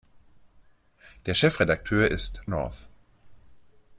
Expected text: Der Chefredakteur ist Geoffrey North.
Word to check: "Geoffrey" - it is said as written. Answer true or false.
false